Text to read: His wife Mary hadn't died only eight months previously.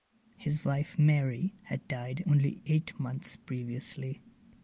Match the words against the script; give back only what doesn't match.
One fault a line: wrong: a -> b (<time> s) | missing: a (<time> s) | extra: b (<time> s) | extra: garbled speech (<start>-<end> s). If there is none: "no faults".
wrong: hadn't -> had (1.6 s)